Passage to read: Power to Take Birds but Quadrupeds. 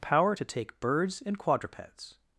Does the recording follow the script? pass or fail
fail